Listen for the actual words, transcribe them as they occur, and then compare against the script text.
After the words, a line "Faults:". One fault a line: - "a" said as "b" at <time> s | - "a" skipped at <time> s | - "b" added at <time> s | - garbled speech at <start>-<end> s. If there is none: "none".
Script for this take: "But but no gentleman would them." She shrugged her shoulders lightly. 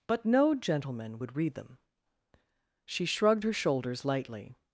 "But no gentleman would read them." She shrugged her shoulders lightly.
Faults:
- "but" skipped at 0.2 s
- "read" added at 1.3 s